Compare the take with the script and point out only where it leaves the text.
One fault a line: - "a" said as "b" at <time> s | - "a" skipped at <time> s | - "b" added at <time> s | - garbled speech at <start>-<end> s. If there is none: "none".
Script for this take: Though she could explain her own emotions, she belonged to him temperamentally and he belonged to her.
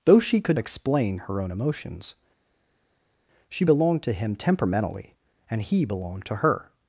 none